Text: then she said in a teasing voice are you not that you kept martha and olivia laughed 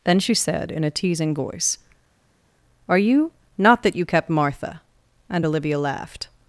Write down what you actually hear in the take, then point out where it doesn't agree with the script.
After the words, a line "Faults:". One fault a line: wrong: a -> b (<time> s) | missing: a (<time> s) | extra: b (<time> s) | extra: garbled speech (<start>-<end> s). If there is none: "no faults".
then she said in a teasing voice are you not that you kept martha and olivia laughed
Faults:
no faults